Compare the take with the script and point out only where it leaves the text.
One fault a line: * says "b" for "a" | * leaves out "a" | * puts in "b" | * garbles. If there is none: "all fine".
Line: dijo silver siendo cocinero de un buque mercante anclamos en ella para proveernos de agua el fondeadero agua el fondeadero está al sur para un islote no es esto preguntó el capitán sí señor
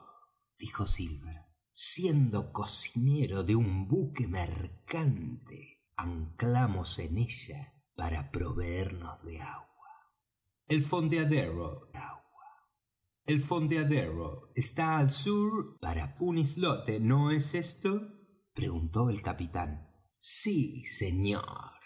all fine